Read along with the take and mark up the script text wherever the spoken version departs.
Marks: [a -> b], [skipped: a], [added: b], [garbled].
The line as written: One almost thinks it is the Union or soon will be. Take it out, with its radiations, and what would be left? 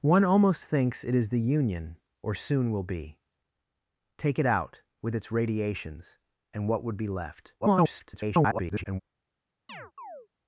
One almost thinks it is the Union or soon will be. Take it out, with its radiations, and what would be left? [garbled]